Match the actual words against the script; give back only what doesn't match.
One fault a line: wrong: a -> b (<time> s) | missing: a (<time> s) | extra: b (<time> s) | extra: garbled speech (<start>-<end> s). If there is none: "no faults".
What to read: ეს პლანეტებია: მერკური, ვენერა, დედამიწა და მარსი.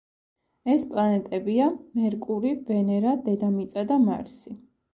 no faults